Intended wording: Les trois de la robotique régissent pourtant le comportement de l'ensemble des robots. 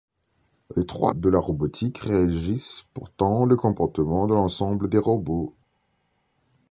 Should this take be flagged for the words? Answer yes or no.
no